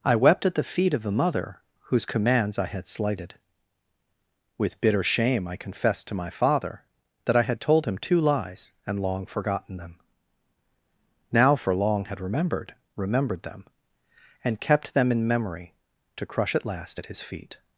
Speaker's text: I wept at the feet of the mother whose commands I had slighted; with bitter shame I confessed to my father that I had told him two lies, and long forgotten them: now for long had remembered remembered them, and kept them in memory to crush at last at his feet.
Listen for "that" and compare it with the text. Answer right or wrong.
right